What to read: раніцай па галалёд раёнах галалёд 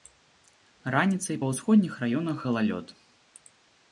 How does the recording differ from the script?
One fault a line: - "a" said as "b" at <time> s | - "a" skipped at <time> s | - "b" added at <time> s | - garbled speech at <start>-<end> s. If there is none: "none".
- "галалёд" said as "ўсходніх" at 1.5 s